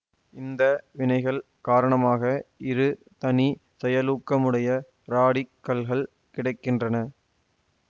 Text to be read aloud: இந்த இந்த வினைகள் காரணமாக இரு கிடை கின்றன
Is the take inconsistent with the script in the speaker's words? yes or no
yes